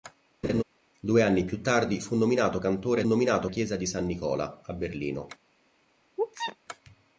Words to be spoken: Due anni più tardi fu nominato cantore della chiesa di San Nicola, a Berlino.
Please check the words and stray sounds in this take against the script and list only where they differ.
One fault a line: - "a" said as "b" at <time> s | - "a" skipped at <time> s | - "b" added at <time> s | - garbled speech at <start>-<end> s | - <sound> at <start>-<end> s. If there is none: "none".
- laugh at 0.4-0.6 s
- "della" said as "nominato" at 3.1 s
- sneeze at 6.2-6.6 s